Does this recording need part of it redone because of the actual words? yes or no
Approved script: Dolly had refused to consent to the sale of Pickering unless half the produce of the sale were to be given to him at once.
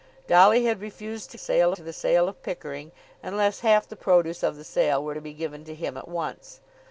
yes